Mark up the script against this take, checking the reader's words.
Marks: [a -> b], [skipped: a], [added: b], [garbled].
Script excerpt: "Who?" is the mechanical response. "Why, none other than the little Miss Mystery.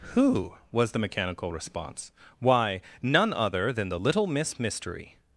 "Who?" [is -> was] the mechanical response. "Why, none other than the little Miss Mystery.